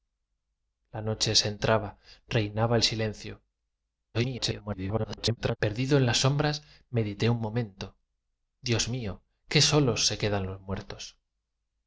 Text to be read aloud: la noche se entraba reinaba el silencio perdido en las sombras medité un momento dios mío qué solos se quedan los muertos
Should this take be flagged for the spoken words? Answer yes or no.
yes